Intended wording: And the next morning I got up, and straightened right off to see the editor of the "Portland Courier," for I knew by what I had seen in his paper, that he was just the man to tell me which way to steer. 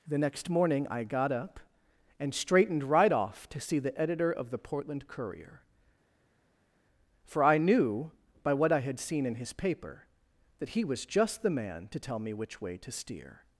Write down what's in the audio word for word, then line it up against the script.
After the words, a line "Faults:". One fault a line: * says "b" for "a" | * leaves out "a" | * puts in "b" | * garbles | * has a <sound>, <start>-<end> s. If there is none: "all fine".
the next morning I got up, and straightened right off to see the editor of the "Portland Courier," for I knew by what I had seen in his paper, that he was just the man to tell me which way to steer.
Faults:
* leaves out "And"